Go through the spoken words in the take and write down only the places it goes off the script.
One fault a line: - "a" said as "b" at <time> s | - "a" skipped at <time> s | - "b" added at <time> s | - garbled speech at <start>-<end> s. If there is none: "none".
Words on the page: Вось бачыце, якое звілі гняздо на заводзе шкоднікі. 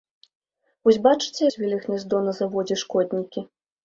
- "якое" skipped at 1.4 s